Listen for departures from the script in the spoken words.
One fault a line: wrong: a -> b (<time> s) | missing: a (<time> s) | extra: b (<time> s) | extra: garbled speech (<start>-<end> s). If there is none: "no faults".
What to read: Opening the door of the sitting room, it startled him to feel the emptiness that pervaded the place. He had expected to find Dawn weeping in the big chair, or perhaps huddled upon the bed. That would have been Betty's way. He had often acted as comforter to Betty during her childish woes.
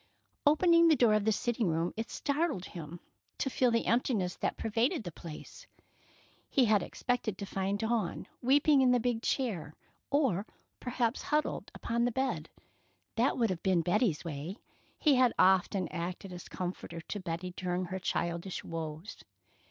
no faults